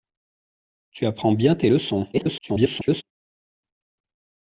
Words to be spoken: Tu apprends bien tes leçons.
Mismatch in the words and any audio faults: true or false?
true